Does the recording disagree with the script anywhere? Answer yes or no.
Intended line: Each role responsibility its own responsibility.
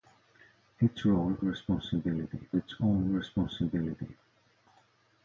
no